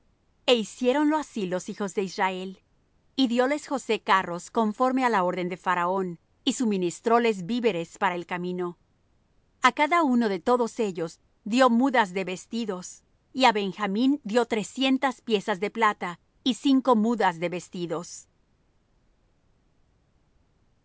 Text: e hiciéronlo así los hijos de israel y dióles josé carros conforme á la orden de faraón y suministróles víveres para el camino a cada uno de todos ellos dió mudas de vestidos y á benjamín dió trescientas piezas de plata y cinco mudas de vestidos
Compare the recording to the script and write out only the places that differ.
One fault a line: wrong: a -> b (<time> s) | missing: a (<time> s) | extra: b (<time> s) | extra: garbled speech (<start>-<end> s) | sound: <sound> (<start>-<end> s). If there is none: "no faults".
no faults